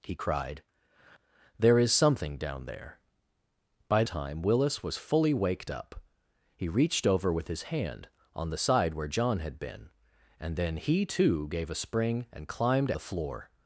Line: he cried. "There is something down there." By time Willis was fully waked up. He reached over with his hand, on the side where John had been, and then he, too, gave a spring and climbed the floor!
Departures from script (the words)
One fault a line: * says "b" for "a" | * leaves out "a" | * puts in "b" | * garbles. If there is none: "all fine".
all fine